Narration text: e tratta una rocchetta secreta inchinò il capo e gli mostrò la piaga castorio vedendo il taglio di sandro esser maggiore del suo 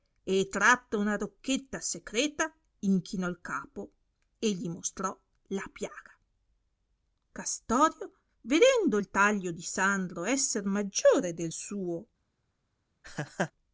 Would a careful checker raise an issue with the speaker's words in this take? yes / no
no